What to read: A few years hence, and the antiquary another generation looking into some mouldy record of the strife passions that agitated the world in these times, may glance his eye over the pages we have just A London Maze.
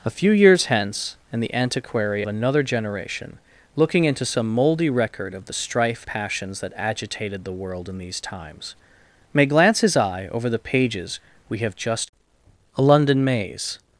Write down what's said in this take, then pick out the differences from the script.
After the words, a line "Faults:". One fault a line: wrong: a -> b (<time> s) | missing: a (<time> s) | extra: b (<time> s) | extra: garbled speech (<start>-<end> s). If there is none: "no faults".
A few years hence, and the antiquary another generation looking into some mouldy record of the strife passions that agitated the world in these times, may glance his eye over the pages we have just A London Maze.
Faults:
no faults